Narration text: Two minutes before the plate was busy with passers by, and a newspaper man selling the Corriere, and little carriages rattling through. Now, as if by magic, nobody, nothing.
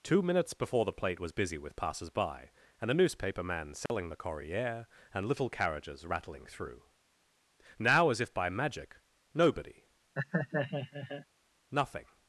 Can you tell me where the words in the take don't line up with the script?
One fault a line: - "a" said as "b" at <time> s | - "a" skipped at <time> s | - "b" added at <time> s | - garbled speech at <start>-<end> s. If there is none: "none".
none